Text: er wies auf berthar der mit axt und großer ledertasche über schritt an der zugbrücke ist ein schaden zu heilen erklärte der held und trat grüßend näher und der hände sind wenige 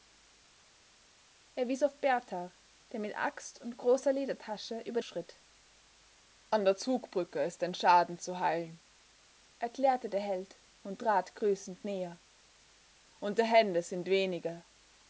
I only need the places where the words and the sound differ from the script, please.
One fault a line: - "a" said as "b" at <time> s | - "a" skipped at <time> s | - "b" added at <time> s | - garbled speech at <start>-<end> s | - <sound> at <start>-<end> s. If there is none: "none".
none